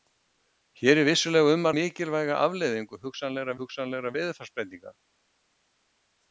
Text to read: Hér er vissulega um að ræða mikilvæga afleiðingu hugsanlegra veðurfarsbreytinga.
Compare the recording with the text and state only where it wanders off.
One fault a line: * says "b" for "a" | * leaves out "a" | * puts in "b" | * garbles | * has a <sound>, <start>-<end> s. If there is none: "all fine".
* leaves out "ræða"
* puts in "hugsanlegra"